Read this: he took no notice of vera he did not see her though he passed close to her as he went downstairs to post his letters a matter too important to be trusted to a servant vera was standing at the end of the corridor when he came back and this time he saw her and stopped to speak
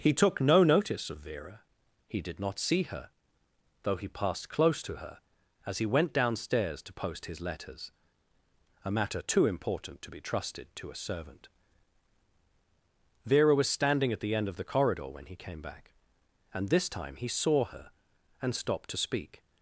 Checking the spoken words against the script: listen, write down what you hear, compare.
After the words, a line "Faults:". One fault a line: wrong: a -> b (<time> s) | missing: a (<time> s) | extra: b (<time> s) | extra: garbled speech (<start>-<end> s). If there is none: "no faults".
he took no notice of vera he did not see her though he passed close to her as he went downstairs to post his letters a matter too important to be trusted to a servant vera was standing at the end of the corridor when he came back and this time he saw her and stopped to speak
Faults:
no faults